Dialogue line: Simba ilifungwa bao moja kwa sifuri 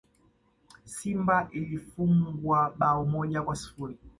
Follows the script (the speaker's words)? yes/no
yes